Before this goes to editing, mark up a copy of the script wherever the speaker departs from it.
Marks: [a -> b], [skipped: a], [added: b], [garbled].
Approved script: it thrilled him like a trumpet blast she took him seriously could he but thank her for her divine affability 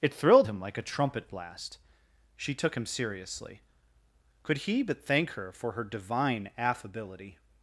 it thrilled him like a trumpet blast she took him seriously could he but thank her for her divine affability